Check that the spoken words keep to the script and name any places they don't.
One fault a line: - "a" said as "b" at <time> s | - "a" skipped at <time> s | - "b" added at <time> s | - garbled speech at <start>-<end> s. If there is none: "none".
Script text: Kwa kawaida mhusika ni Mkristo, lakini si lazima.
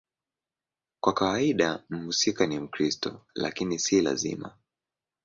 none